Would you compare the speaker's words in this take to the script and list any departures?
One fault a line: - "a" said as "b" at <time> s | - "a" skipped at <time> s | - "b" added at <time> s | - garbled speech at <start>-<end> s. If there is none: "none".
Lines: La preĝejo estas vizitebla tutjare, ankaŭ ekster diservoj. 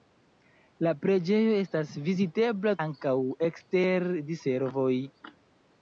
- "tutjare" skipped at 2.8 s